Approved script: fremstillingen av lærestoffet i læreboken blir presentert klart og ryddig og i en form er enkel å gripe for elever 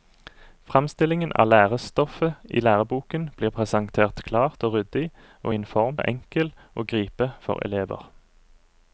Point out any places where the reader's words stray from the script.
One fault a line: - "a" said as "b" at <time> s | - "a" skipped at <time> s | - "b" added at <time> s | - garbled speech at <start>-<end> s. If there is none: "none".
none